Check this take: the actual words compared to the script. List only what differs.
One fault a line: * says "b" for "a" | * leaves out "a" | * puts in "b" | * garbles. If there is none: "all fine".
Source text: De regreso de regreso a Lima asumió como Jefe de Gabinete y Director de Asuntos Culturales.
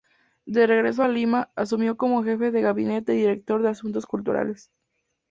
* leaves out "de regreso"